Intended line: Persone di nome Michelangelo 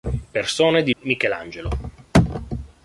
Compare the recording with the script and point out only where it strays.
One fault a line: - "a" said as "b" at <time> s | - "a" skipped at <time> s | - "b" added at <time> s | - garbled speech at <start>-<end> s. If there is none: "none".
- "nome" skipped at 0.9 s